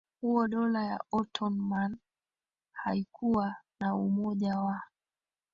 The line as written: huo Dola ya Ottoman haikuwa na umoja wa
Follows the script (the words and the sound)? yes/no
yes